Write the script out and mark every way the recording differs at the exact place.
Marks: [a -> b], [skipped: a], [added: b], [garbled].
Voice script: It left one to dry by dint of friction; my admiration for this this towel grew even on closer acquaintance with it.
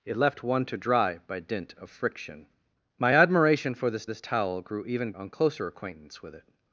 It left one to dry by dint of friction; my admiration for this this towel grew even on closer acquaintance with it.